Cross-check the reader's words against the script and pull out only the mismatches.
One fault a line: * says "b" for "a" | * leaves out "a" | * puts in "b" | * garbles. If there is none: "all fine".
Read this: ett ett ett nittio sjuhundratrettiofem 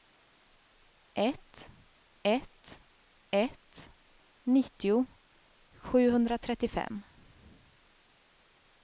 all fine